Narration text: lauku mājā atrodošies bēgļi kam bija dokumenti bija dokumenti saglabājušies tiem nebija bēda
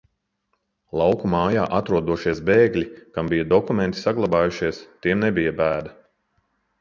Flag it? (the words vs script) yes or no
yes